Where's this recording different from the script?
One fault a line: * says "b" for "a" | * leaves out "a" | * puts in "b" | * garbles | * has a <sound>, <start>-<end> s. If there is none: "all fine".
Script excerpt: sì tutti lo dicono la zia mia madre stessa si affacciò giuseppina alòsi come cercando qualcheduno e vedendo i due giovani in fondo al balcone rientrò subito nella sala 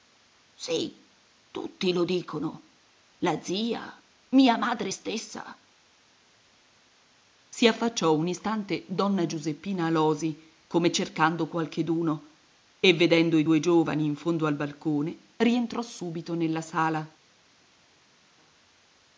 * puts in "un istante donna"